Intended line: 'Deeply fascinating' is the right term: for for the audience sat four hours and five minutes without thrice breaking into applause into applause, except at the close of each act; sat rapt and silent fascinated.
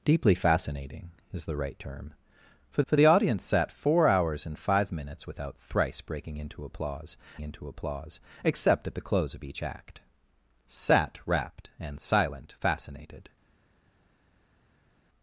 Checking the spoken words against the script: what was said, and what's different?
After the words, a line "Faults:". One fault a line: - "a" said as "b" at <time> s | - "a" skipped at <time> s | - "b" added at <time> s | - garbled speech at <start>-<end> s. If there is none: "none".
'Deeply fascinating' is the right term: for for the audience sat four hours and five minutes without thrice breaking into applause into applause, except at the close of each act; sat rapt and silent fascinated.
Faults:
none